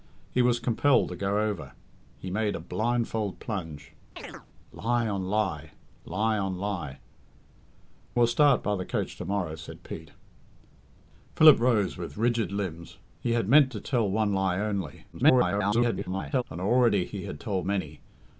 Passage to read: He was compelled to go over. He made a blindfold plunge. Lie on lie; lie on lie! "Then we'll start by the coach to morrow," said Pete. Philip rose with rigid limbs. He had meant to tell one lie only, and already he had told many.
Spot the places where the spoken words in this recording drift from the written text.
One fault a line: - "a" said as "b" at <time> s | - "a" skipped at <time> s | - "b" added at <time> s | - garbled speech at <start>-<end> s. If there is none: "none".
- "Then" skipped at 7.0 s
- garbled speech at 15.1-16.4 s